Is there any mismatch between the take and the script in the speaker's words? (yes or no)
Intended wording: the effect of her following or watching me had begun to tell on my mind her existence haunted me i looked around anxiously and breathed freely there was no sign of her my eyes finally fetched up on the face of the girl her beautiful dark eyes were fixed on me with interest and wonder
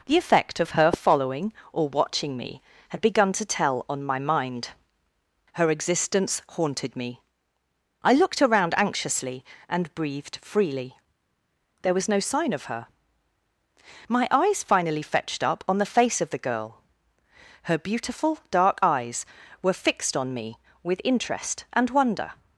no